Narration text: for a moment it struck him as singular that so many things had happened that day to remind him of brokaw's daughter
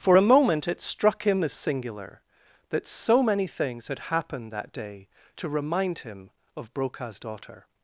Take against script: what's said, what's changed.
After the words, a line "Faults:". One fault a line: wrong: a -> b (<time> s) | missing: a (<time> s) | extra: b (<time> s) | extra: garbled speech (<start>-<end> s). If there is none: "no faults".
for a moment it struck him as singular that so many things had happened that day to remind him of brokaw's daughter
Faults:
no faults